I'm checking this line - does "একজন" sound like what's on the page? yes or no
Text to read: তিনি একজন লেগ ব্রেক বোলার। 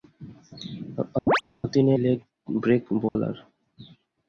no